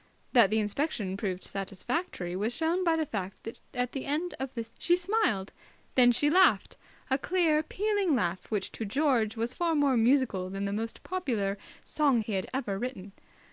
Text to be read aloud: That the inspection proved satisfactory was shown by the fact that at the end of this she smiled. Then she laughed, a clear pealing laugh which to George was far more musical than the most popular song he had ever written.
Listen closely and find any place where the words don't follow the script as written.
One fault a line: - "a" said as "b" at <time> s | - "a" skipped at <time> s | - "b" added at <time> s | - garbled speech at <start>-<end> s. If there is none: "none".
none